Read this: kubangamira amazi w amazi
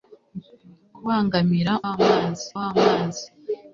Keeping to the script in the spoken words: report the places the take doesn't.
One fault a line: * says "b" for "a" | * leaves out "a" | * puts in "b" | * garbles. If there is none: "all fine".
all fine